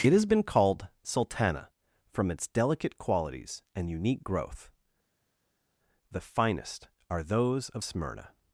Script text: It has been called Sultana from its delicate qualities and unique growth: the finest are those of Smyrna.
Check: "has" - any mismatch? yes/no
no